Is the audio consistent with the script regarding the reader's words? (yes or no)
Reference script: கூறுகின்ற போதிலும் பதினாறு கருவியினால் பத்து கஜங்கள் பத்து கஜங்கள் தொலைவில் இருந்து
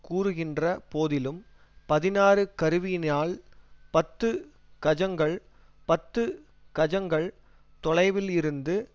yes